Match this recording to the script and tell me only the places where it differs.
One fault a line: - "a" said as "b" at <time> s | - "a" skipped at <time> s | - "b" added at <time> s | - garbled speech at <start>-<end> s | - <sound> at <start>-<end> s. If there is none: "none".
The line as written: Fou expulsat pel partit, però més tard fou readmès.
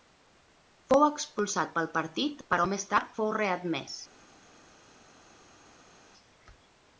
none